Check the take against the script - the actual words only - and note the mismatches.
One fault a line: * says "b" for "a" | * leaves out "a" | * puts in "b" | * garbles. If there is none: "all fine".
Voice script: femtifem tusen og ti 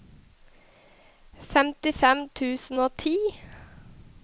all fine